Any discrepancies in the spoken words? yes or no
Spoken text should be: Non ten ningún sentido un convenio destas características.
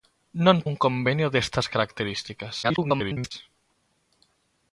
yes